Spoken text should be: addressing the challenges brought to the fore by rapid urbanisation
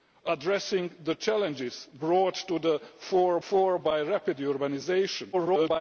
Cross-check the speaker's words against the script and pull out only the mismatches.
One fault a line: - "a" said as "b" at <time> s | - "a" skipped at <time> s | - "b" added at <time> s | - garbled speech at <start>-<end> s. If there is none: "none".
- "fore" added at 3.5 s
- garbled speech at 5.3-5.8 s